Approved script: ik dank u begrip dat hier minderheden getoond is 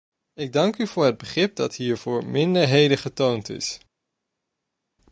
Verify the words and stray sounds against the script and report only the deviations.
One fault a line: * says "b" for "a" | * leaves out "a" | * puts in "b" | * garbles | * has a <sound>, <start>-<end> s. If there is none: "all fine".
* puts in "voor het"
* puts in "voor"